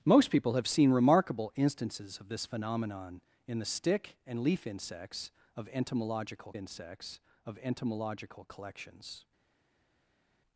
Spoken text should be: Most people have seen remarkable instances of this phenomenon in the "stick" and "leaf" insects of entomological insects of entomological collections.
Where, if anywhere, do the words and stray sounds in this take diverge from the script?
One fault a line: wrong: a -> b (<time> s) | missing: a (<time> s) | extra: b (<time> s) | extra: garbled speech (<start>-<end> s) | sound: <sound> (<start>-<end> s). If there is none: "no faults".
no faults